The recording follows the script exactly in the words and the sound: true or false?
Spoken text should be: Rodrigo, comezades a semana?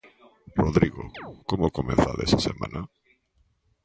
false